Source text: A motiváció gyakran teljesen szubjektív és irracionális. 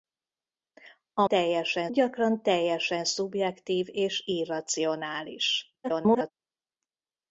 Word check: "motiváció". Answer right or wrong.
wrong